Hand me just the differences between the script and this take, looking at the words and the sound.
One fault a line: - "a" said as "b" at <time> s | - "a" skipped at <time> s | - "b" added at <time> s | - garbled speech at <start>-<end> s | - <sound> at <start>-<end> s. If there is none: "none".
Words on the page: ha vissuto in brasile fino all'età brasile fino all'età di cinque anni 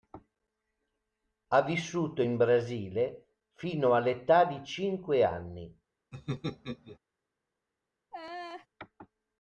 - "brasile fino all'età" skipped at 4.4 s
- laugh at 6.1-7.0 s
- laugh at 8.1-8.7 s